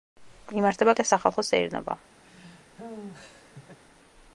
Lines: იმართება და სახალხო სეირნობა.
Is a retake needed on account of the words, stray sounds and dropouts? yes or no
yes